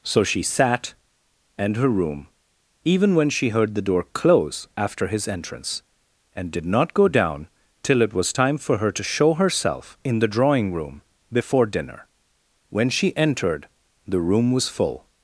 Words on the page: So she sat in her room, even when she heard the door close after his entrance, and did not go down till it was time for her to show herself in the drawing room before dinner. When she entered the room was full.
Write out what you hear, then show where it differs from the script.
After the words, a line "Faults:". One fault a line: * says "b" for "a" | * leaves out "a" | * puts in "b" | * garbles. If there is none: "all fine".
So she sat and her room, even when she heard the door close after his entrance, and did not go down till it was time for her to show herself in the drawing room before dinner. When she entered the room was full.
Faults:
* says "and" for "in"